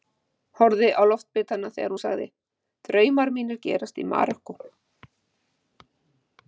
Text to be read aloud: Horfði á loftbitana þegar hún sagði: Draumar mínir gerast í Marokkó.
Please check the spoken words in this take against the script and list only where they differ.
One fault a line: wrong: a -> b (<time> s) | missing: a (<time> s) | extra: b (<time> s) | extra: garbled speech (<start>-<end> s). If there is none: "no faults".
no faults